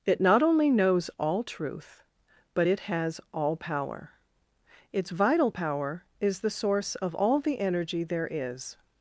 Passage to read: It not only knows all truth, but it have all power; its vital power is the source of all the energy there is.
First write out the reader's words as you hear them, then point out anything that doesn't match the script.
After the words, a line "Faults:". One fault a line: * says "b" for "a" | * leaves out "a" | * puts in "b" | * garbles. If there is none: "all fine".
It not only knows all truth, but it has all power; its vital power is the source of all the energy there is.
Faults:
* says "has" for "have"